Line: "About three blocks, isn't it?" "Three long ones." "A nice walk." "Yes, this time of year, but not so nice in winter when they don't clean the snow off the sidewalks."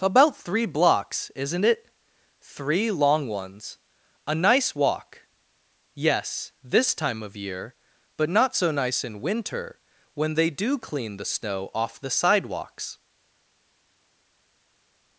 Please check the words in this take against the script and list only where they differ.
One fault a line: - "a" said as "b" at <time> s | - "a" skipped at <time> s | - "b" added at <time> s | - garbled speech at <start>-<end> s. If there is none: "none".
- "don't" said as "do" at 10.5 s